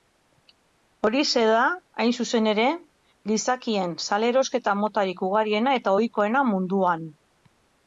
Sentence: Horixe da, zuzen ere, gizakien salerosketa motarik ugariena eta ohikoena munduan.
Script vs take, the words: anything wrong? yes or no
yes